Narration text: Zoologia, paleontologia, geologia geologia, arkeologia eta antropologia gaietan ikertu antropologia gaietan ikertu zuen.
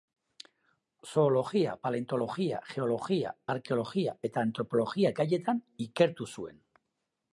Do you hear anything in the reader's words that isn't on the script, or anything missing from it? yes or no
yes